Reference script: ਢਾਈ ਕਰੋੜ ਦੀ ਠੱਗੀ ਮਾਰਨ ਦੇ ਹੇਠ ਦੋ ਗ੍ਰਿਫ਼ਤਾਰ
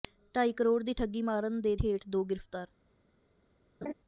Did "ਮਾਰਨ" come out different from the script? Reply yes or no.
no